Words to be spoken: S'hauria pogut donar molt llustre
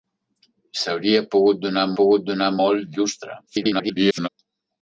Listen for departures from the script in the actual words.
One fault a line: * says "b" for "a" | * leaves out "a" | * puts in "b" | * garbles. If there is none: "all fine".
* puts in "pogut donar"
* garbles